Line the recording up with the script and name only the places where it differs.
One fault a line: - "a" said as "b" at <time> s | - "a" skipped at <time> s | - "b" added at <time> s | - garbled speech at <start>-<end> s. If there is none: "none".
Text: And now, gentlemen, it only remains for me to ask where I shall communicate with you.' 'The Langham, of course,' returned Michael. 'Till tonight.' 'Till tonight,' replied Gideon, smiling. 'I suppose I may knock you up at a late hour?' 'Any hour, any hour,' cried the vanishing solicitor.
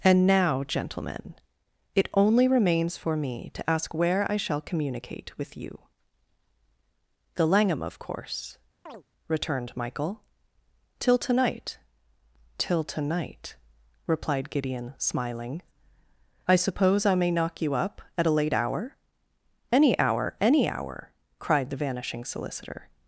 none